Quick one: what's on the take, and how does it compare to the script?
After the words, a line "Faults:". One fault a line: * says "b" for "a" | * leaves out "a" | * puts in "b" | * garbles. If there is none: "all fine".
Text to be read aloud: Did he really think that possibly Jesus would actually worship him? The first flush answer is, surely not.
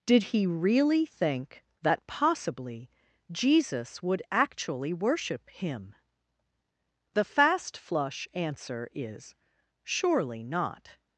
Did he really think that possibly Jesus would actually worship him? The fast flush answer is, surely not.
Faults:
* says "fast" for "first"